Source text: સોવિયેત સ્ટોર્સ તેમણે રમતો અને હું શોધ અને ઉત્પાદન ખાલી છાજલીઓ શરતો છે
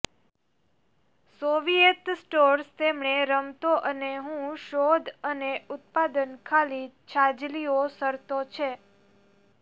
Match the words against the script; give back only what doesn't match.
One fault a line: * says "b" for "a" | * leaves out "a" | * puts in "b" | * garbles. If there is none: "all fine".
all fine